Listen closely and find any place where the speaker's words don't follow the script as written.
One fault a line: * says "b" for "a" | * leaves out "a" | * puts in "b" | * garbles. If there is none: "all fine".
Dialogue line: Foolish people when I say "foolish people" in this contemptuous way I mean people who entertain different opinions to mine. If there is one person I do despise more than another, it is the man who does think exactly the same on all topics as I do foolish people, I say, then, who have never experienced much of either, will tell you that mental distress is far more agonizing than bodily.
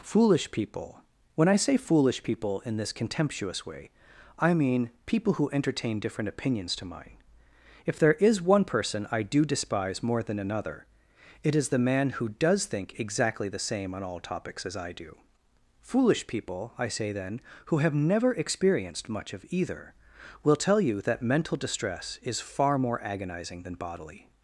all fine